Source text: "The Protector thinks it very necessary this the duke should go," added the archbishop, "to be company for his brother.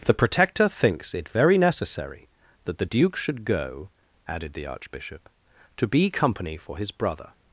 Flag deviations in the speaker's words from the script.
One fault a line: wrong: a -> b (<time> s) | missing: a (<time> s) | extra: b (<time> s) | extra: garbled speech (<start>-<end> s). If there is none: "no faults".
wrong: this -> that (2.6 s)